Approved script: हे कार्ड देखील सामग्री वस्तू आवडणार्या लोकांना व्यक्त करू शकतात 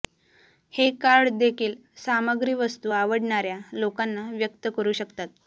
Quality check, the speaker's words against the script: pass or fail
pass